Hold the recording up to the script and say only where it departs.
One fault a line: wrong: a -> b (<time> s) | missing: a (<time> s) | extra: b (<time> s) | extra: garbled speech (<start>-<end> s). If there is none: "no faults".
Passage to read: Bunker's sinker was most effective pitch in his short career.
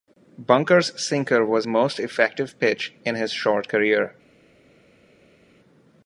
no faults